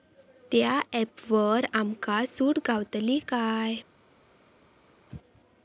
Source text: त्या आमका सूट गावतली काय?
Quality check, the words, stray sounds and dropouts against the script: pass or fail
fail